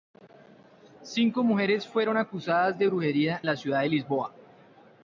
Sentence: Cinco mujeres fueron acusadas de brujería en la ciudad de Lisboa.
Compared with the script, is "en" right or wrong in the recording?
wrong